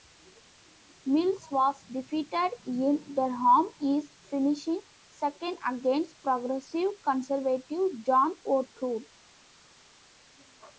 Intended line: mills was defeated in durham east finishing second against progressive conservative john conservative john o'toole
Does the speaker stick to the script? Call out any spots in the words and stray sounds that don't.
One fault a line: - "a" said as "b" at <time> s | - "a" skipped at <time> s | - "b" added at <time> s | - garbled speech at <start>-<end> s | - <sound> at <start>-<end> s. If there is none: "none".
- "conservative john" skipped at 8.4 s